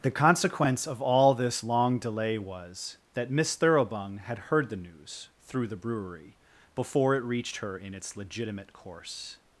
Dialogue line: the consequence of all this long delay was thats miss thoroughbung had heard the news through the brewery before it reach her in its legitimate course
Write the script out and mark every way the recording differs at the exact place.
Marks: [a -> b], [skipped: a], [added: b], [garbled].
the consequence of all this long delay was [thats -> that] miss thoroughbung had heard the news through the brewery before it [reach -> reached] her in its legitimate course